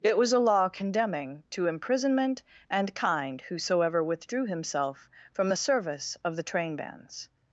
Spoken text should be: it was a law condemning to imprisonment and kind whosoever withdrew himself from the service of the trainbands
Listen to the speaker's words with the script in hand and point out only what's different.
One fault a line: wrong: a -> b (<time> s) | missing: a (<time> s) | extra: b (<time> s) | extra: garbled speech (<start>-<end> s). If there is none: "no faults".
no faults